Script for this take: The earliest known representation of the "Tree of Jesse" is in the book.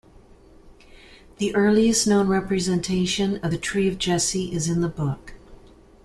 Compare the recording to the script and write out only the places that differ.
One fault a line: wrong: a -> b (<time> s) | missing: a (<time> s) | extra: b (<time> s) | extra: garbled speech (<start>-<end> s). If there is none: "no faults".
no faults